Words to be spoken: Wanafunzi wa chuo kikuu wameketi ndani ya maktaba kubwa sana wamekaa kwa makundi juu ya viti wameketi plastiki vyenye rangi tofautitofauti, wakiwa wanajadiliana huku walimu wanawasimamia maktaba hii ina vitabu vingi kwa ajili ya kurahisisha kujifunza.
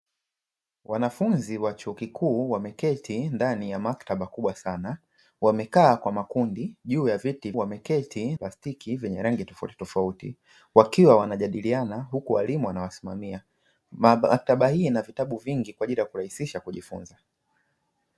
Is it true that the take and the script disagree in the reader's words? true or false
false